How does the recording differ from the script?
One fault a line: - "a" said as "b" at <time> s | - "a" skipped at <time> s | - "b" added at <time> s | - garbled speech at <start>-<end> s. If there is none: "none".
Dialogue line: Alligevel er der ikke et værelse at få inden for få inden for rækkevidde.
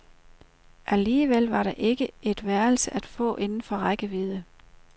- "er" said as "var" at 1.5 s
- "få inden for" skipped at 3.8 s